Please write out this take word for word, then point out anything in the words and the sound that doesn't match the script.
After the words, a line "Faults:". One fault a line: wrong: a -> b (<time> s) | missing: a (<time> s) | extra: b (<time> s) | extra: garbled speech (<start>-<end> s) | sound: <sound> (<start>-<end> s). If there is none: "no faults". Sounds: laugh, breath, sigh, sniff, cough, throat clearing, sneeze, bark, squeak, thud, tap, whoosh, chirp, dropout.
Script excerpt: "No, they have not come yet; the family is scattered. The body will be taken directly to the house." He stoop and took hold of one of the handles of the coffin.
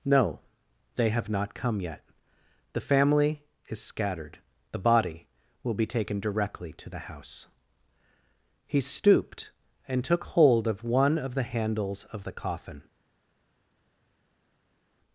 "No, they have not come yet; the family is scattered. The body will be taken directly to the house." He stooped and took hold of one of the handles of the coffin.
Faults:
wrong: stoop -> stooped (8.8 s)